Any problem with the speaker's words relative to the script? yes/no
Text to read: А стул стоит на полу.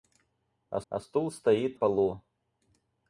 yes